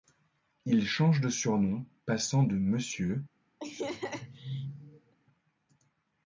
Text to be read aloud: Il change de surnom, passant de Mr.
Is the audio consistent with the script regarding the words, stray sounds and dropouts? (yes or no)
no